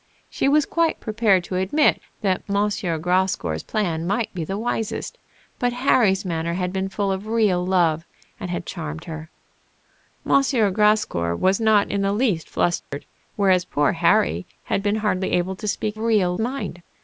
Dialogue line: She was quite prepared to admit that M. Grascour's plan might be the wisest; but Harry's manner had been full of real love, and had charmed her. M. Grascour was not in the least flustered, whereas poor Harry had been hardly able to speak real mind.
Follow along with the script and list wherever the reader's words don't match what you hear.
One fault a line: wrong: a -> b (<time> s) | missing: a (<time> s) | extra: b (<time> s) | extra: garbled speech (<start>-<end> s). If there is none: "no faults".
no faults